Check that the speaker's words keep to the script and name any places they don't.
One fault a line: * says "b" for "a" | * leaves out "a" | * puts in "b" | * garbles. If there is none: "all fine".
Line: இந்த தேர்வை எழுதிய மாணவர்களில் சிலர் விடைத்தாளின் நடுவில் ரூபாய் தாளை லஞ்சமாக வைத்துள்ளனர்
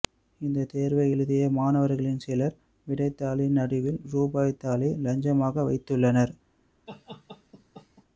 all fine